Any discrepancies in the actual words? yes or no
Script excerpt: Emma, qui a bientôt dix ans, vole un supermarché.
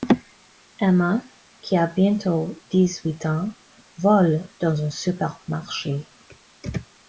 yes